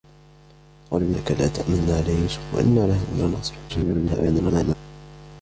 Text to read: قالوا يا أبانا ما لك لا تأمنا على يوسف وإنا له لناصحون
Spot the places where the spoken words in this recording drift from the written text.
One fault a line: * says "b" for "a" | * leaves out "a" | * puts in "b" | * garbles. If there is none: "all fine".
* leaves out "يا أبانا ما"
* garbles